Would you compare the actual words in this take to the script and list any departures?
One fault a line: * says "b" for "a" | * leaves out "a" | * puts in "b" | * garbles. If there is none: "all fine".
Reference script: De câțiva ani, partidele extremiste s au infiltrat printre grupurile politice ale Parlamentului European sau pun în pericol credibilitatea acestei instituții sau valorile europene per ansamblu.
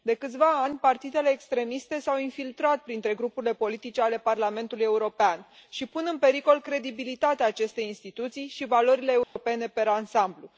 * says "și" for "sau"
* says "și" for "sau"